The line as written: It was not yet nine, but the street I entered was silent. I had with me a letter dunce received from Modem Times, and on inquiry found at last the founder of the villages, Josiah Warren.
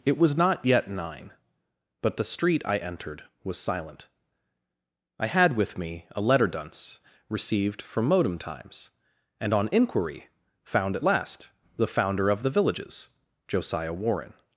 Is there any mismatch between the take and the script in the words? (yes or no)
no